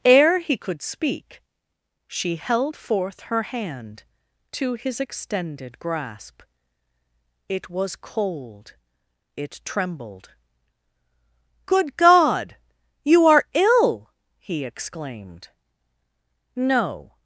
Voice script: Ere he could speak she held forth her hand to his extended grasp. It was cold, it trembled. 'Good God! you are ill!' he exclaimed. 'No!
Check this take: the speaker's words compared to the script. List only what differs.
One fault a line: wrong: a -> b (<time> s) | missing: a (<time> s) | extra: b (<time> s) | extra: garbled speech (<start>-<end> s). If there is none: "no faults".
no faults